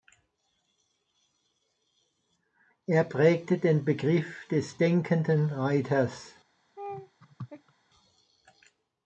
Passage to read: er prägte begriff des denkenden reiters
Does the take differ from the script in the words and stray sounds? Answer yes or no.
yes